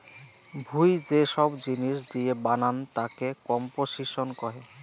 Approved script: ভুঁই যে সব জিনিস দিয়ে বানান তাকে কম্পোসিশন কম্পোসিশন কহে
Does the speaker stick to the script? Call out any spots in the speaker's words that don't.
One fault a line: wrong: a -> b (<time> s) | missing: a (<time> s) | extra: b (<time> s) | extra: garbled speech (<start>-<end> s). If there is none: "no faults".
missing: কম্পোসিশন (4.3 s)